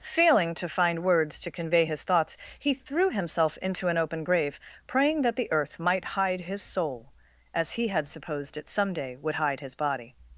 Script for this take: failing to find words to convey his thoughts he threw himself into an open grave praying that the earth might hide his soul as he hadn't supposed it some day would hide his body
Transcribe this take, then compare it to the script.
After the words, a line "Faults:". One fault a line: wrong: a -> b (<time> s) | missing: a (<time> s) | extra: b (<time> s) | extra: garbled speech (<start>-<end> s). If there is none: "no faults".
failing to find words to convey his thoughts he threw himself into an open grave praying that the earth might hide his soul as he had supposed it some day would hide his body
Faults:
wrong: hadn't -> had (7.9 s)